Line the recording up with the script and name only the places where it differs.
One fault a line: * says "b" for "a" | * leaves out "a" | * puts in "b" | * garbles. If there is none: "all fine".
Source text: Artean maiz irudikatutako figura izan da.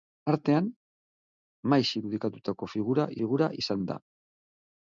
* puts in "figura"